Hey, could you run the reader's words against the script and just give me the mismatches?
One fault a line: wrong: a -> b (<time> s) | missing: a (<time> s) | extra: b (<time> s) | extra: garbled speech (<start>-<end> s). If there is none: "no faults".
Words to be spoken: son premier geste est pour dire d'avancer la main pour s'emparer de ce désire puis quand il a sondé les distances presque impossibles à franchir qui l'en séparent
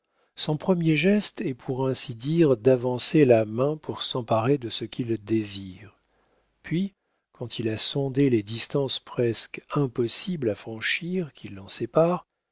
extra: ainsi (1.9 s)
extra: qu'il (4.8 s)